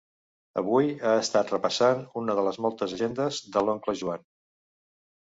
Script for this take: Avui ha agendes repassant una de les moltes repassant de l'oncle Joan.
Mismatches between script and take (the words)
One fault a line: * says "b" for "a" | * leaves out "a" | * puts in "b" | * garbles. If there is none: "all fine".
* says "estat" for "agendes"
* says "agendes" for "repassant"